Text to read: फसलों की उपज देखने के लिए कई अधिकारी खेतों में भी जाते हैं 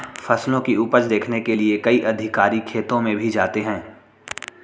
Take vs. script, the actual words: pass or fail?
pass